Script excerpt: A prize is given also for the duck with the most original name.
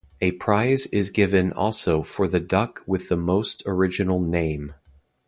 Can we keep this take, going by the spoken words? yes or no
yes